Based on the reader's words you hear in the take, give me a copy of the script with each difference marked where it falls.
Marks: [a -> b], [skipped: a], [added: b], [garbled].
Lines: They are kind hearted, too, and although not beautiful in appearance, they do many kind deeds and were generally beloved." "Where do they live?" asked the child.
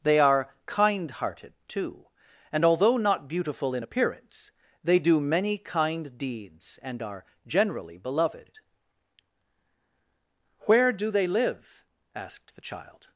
They are kind hearted, too, and although not beautiful in appearance, they do many kind deeds and [were -> are] generally beloved." "Where do they live?" asked the child.